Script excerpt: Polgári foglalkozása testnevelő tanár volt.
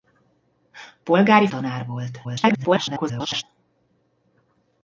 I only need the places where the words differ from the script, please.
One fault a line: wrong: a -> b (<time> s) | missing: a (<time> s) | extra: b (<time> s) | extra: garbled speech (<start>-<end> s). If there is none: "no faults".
missing: foglalkozása testnevelő (1.5 s)
extra: garbled speech (2.2-3.4 s)